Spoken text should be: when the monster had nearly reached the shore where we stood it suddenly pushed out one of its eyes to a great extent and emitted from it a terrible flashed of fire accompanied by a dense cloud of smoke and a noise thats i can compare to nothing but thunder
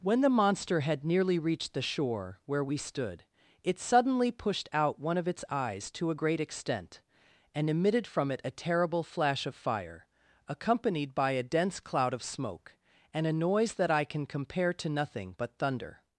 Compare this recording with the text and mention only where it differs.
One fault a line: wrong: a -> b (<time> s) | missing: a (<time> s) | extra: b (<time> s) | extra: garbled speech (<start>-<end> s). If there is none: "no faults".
wrong: flashed -> flash (9.0 s)
wrong: thats -> that (13.7 s)